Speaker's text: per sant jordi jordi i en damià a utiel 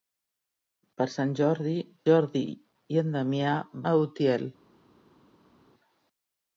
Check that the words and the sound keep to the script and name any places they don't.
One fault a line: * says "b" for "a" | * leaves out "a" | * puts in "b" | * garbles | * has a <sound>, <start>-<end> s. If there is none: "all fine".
all fine